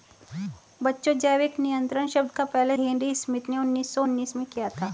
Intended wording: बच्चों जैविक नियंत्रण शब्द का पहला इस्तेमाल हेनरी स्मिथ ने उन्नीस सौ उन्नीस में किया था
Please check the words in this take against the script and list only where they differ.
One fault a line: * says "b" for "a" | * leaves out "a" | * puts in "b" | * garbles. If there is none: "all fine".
* leaves out "इस्तेमाल"